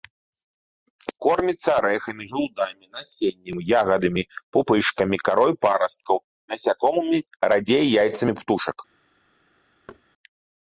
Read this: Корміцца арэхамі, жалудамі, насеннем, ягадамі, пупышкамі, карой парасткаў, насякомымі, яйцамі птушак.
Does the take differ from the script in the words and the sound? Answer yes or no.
yes